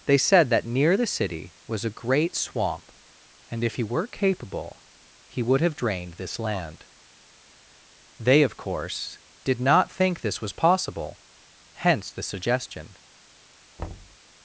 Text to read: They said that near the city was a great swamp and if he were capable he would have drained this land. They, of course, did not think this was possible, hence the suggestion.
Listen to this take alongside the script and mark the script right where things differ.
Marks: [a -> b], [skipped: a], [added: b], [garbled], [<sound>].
They said that near the city was a great swamp and if he were capable he would have drained this land. They, of course, did not think this was possible, hence the suggestion. [thud]